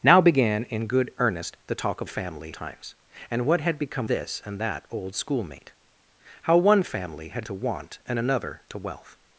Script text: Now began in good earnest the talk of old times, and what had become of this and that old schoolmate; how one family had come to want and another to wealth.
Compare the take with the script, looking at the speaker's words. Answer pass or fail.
fail